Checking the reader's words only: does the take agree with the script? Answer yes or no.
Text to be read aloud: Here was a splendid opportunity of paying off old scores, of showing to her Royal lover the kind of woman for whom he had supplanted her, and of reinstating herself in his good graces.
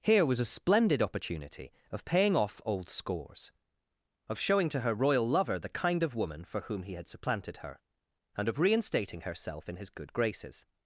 yes